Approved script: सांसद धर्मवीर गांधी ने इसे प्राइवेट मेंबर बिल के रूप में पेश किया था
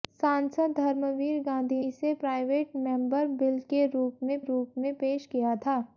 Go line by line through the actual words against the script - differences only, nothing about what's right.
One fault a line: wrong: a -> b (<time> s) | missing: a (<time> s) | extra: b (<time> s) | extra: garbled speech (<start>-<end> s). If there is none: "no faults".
missing: ने (1.8 s)
extra: रूप में (4.4 s)